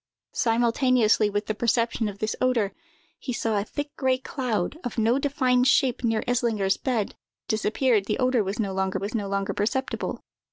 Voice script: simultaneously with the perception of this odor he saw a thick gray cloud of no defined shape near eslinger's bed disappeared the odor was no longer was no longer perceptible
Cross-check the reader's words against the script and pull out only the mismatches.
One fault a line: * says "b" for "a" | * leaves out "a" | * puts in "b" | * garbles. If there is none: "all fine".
all fine